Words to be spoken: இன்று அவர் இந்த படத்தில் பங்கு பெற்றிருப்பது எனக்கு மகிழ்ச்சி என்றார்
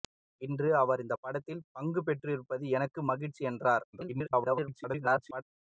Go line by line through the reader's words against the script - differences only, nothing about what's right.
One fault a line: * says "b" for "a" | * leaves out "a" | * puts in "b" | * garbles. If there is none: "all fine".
* garbles